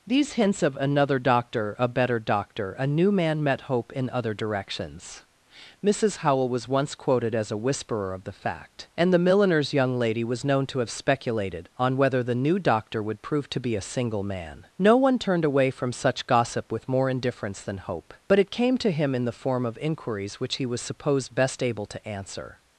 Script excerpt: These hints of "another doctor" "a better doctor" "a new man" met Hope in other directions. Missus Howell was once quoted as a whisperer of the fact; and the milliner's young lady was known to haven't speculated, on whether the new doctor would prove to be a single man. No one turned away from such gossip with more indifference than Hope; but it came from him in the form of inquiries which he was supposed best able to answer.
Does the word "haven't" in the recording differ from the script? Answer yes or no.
yes